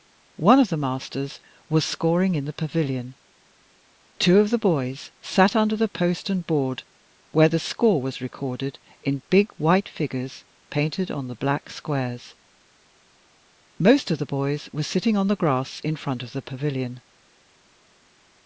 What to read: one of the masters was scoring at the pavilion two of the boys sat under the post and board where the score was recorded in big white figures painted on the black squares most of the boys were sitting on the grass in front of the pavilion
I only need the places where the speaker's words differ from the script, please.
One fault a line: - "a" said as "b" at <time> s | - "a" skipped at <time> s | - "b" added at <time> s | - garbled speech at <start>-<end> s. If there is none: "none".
- "at" said as "in" at 2.3 s